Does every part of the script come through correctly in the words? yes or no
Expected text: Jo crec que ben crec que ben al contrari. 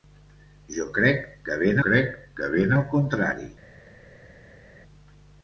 yes